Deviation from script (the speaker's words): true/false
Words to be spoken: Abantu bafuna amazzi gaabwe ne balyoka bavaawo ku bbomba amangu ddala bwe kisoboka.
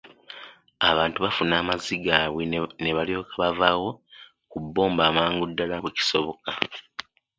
false